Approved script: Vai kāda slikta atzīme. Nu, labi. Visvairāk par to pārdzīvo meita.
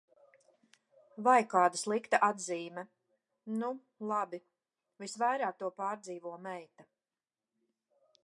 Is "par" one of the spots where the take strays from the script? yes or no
yes